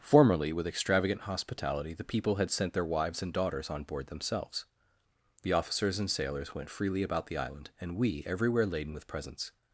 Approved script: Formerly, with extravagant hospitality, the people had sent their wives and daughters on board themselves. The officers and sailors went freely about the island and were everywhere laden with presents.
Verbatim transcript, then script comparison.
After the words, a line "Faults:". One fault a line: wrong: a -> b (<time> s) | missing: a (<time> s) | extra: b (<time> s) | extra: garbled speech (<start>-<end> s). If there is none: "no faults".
Formerly, with extravagant hospitality, the people had sent their wives and daughters on board themselves. The officers and sailors went freely about the island and we everywhere laden with presents.
Faults:
wrong: were -> we (8.0 s)